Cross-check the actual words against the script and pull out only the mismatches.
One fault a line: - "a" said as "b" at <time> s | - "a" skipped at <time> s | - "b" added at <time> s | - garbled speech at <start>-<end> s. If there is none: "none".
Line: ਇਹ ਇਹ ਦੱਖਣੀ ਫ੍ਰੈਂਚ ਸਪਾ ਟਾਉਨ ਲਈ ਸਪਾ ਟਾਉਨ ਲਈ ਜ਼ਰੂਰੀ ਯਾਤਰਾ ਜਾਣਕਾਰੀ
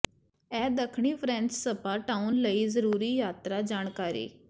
- "ਇਹ" skipped at 0.7 s
- "ਸਪਾ ਟਾਉਨ ਲਈ" skipped at 2.7 s